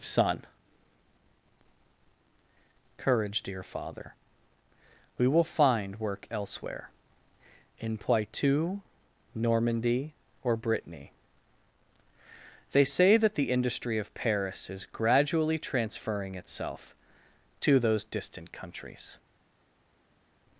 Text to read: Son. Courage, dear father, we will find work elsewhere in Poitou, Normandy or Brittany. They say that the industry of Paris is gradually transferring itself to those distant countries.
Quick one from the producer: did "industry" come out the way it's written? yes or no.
yes